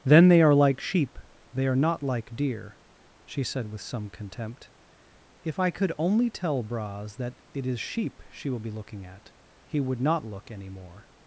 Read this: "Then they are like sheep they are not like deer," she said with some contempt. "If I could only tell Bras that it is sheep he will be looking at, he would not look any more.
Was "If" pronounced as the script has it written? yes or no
yes